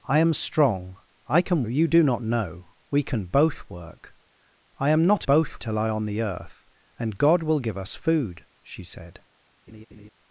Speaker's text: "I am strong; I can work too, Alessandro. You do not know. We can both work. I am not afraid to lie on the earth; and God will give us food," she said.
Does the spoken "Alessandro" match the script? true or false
false